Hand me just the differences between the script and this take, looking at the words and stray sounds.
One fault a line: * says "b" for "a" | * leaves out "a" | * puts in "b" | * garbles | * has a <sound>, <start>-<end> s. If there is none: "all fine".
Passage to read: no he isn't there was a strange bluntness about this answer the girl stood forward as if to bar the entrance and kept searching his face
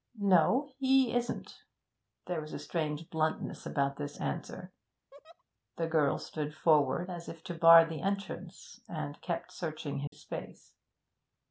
* has a laugh, 5.1-5.4 s
* has a dropout, 10.1-10.1 s